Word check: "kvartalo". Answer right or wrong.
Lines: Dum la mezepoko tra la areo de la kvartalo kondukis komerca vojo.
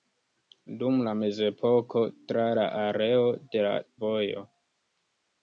wrong